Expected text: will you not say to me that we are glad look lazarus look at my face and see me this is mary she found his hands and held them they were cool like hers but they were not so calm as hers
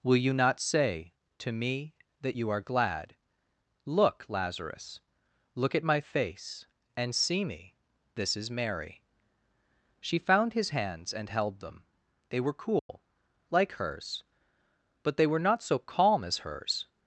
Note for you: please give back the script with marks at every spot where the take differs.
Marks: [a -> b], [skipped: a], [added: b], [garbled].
will you not say to me that [we -> you] are glad look lazarus look at my face and see me this is mary she found his hands and held them they were cool like hers but they were not so calm as hers